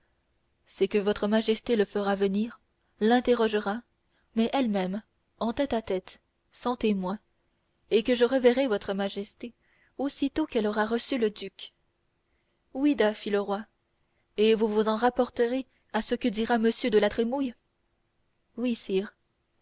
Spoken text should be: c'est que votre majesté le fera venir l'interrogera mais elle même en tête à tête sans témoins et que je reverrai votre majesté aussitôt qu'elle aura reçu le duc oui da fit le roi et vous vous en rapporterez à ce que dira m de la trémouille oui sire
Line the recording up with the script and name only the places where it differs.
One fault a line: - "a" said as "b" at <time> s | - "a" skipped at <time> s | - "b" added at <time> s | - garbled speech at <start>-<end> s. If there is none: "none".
none